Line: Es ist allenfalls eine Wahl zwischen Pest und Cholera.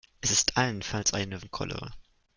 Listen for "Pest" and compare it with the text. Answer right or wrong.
wrong